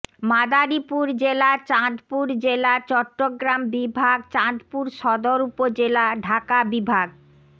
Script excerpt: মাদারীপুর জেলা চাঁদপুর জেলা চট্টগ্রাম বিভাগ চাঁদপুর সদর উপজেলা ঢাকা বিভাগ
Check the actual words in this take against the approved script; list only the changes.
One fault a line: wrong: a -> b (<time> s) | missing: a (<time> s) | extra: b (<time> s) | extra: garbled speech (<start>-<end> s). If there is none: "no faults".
no faults